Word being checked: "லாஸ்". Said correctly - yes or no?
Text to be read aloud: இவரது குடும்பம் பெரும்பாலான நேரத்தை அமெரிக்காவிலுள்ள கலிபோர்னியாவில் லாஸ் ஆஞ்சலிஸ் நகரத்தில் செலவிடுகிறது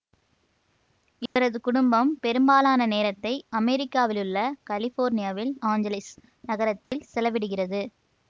no